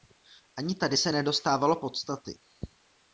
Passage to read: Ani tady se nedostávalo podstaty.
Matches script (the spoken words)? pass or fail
pass